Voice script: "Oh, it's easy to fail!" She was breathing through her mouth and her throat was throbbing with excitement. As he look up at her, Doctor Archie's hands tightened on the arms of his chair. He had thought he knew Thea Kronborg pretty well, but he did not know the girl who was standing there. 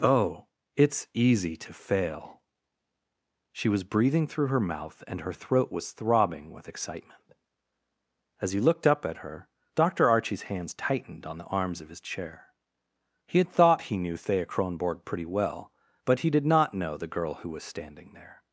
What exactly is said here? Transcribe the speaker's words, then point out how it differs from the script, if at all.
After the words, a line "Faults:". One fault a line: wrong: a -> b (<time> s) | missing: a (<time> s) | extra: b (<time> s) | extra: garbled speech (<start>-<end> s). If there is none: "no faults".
"Oh, it's easy to fail!" She was breathing through her mouth and her throat was throbbing with excitement. As he looked up at her, Doctor Archie's hands tightened on the arms of his chair. He had thought he knew Thea Kronborg pretty well, but he did not know the girl who was standing there.
Faults:
wrong: look -> looked (8.6 s)